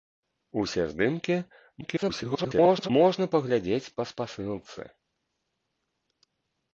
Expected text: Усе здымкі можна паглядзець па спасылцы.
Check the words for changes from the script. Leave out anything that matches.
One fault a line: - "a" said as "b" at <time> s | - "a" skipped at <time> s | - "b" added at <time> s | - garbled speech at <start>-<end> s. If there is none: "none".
- garbled speech at 1.8-2.9 s